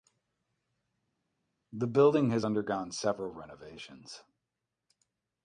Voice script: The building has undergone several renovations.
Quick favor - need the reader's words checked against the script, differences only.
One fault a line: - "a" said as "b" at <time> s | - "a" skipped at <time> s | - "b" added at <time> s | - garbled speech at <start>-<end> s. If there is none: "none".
none